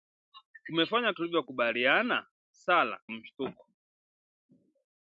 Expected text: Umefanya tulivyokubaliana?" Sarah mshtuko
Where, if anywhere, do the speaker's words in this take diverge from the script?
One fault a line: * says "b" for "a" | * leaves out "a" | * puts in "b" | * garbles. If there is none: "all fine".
all fine